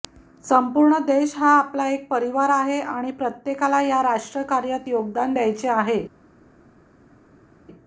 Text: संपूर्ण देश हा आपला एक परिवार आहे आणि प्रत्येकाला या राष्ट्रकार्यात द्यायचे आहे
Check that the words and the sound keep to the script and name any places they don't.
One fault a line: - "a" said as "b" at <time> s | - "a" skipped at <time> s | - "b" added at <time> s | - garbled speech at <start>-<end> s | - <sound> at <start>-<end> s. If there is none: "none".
- "योगदान" added at 4.9 s